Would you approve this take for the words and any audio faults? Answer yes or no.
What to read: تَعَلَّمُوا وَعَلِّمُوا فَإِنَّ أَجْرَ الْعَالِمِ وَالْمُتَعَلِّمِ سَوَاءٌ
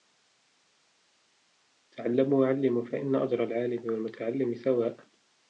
yes